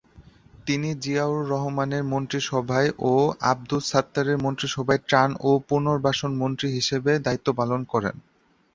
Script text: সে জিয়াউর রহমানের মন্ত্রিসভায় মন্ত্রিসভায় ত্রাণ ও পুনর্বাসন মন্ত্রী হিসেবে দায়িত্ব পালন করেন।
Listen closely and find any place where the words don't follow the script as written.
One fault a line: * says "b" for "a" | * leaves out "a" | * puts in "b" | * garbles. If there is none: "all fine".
* says "তিনি" for "সে"
* puts in "ও আবদুস সাত্তারের"